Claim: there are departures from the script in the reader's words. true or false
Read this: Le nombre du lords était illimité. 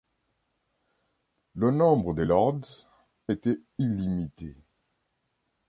true